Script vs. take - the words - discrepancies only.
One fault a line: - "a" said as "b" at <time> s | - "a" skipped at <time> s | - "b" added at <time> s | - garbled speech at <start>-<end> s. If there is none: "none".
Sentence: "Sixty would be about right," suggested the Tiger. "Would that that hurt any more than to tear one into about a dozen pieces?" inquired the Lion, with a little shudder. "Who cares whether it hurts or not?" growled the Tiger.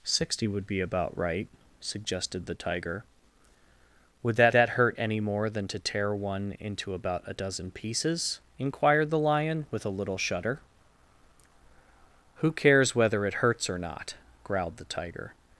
none